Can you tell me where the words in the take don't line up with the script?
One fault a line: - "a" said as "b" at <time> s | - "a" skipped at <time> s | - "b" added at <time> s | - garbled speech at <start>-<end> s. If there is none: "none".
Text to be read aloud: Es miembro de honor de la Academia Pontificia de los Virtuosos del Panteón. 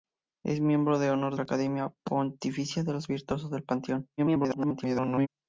- "de" skipped at 1.4 s
- garbled speech at 4.2-5.3 s